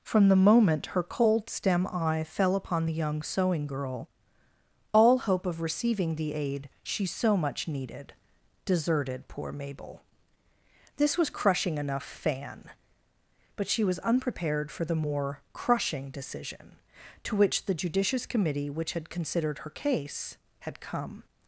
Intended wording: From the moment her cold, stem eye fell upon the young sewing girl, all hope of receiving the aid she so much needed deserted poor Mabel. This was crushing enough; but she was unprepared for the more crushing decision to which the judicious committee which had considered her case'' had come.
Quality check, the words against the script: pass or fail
fail